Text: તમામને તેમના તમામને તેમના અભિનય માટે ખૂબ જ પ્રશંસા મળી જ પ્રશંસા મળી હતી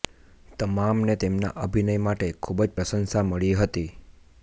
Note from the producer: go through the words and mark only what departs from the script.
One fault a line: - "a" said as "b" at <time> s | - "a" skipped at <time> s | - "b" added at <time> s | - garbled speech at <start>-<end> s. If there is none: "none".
- "તમામને તેમના" skipped at 1.5 s
- "જ પ્રશંસા મળી" skipped at 3.6 s